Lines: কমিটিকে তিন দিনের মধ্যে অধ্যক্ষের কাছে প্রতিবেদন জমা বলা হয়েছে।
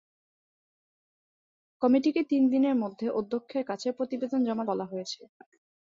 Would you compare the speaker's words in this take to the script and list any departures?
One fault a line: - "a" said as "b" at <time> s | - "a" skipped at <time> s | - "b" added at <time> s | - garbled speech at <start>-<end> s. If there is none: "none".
none